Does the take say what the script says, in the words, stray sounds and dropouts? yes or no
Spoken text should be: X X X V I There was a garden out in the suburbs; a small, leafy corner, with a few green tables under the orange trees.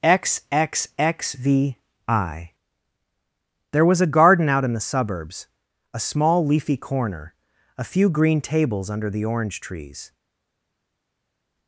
no